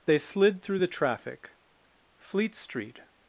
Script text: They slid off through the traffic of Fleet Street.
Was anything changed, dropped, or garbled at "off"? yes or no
yes